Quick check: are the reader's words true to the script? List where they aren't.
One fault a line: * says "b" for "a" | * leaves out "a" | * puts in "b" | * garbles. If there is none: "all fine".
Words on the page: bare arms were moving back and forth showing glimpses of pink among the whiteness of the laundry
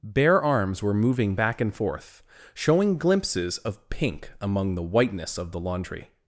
all fine